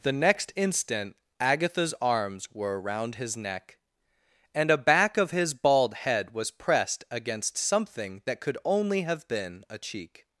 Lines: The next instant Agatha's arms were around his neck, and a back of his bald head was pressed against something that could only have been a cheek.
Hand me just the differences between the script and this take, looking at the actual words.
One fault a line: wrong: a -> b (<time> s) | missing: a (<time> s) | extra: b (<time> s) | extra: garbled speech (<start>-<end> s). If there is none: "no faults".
no faults